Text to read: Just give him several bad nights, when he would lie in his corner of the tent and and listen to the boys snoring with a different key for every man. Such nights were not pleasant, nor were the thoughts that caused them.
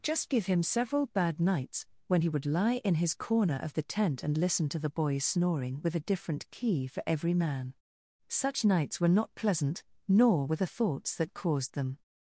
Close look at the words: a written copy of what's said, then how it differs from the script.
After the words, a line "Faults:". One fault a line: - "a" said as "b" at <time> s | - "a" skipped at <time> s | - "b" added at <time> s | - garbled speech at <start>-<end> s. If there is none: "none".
Just give him several bad nights, when he would lie in his corner of the tent and listen to the boys snoring with a different key for every man. Such nights were not pleasant, nor were the thoughts that caused them.
Faults:
- "and" skipped at 4.4 s